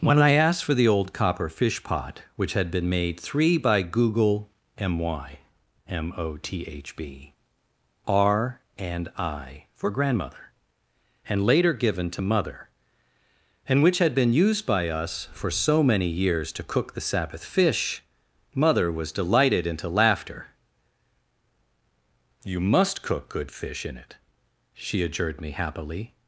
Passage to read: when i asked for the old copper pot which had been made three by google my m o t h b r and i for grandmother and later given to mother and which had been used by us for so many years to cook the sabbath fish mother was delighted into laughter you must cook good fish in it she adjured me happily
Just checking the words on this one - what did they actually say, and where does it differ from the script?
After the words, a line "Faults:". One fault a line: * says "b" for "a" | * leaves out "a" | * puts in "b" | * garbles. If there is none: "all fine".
when i asked for the old copper fish pot which had been made three by google my m o t h b r and i for grandmother and later given to mother and which had been used by us for so many years to cook the sabbath fish mother was delighted into laughter you must cook good fish in it she adjured me happily
Faults:
* puts in "fish"